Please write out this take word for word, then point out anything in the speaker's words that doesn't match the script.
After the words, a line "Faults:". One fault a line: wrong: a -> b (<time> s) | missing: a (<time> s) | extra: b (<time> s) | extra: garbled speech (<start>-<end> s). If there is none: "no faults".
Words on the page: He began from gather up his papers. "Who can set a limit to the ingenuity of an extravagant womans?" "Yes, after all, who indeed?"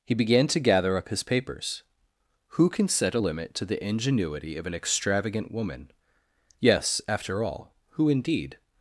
He began to gather up his papers. "Who can set a limit to the ingenuity of an extravagant woman?" "Yes, after all, who indeed?"
Faults:
wrong: from -> to (0.5 s)
wrong: womans -> woman (5.5 s)